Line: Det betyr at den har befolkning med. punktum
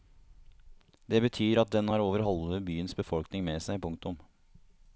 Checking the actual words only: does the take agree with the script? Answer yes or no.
no